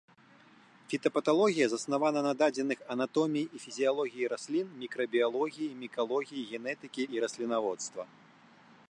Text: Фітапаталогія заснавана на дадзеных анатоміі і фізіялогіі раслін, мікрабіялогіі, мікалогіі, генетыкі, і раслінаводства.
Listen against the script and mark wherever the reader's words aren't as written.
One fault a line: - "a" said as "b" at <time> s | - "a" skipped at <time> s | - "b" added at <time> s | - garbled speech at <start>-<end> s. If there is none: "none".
none